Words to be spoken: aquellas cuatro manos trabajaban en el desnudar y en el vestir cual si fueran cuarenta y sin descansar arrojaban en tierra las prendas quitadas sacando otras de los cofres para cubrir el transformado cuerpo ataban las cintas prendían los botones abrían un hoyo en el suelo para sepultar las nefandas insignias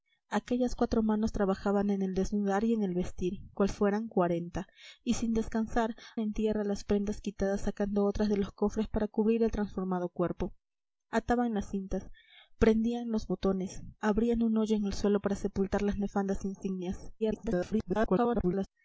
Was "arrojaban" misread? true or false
true